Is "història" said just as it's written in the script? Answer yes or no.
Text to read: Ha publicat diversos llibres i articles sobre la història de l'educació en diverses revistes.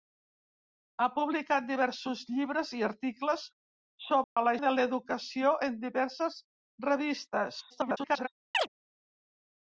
no